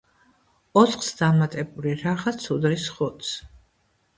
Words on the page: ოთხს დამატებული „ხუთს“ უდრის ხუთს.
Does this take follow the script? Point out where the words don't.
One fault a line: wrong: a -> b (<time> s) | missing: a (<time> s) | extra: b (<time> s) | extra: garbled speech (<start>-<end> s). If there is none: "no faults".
wrong: ხუთს -> რაღაც (2.0 s)